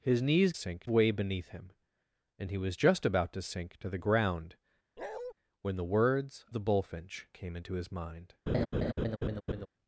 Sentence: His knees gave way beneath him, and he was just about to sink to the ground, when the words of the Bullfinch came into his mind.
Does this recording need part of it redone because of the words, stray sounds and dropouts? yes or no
yes